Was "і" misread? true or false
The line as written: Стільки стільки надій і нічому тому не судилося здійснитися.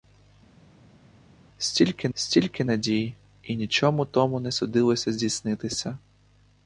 false